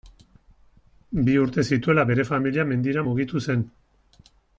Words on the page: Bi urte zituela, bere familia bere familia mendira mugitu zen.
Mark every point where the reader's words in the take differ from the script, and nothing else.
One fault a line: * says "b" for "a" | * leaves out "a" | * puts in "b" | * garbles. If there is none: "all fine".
* leaves out "bere familia"